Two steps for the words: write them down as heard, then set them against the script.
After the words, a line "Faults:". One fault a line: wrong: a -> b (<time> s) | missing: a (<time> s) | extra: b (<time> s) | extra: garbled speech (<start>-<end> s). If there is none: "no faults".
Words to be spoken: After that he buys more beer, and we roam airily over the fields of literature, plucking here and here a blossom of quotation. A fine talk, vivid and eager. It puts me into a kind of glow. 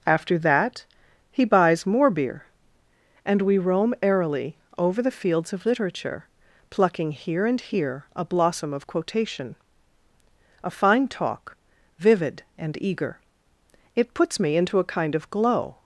After that he buys more beer, and we roam airily over the fields of literature, plucking here and here a blossom of quotation. A fine talk, vivid and eager. It puts me into a kind of glow.
Faults:
no faults